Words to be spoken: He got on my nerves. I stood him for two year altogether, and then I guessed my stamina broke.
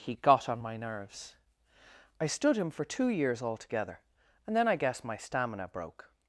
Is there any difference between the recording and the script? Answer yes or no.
yes